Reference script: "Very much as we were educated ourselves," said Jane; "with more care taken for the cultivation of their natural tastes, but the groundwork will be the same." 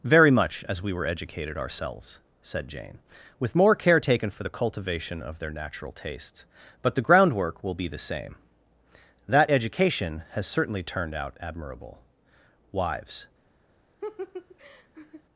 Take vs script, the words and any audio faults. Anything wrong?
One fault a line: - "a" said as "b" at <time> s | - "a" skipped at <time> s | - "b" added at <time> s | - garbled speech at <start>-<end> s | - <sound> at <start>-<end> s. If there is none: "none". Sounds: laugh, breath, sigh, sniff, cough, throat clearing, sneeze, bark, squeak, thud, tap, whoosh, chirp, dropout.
- "That education has certainly turned out admirable wives" added at 9.3 s
- laugh at 14.0-15.2 s